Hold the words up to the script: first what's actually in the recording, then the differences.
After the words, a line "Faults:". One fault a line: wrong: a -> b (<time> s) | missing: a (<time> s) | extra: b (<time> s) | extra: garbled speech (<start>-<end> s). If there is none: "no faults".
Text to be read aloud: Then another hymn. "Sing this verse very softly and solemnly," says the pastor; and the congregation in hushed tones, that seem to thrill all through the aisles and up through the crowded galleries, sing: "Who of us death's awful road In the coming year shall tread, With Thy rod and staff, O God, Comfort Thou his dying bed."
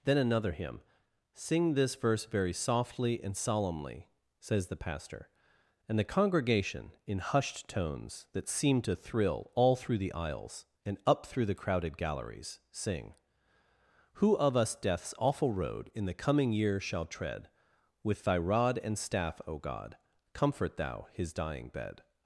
Then another hymn. "Sing this verse very softly and solemnly," says the pastor; and the congregation in hushed tones, that seem to thrill all through the aisles and up through the crowded galleries, sing: "Who of us death's awful road In the coming year shall tread, With Thy rod and staff, O God, Comfort Thou his dying bed."
Faults:
no faults